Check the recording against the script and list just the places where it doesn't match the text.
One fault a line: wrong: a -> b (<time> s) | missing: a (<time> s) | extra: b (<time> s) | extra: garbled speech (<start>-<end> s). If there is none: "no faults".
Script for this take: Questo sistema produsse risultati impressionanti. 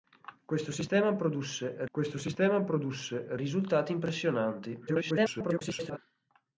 extra: questo sistema produsse (1.9 s)
extra: garbled speech (4.9-6.0 s)